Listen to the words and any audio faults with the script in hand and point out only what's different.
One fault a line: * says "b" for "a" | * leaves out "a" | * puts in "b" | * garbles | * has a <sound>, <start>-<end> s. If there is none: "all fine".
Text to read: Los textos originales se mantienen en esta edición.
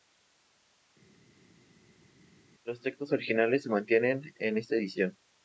all fine